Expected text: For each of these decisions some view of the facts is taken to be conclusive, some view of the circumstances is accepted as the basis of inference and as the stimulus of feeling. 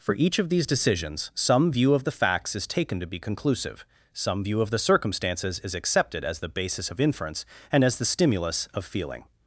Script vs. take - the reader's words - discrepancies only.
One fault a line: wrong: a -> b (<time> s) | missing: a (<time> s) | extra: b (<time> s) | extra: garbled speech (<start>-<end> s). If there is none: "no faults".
no faults